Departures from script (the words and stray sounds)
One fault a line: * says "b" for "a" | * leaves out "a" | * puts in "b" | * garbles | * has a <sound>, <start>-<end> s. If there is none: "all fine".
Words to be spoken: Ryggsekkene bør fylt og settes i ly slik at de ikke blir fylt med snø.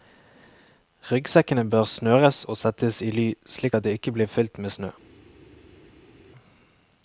* says "snøres" for "fylt"